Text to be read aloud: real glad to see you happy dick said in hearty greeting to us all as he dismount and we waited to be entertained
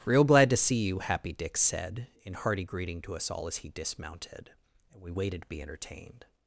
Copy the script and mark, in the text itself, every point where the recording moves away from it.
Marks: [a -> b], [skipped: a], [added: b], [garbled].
real glad to see you happy dick said in hearty greeting to us all as he [dismount -> dismounted] and we waited to be entertained